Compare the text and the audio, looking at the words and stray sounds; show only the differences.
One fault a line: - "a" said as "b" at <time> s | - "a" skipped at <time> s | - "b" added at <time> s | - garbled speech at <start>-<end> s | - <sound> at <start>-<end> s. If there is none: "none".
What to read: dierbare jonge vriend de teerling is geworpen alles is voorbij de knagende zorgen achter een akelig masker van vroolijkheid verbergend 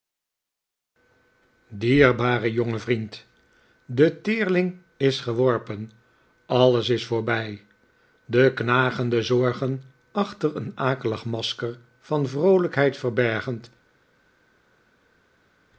none